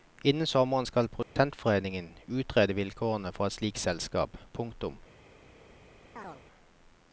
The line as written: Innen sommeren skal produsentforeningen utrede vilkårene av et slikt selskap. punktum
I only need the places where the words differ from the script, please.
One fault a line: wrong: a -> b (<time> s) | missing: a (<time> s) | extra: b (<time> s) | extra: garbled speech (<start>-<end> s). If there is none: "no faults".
wrong: av -> for (3.3 s)